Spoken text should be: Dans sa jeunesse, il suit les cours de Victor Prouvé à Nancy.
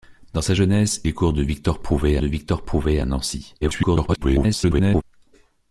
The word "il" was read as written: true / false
false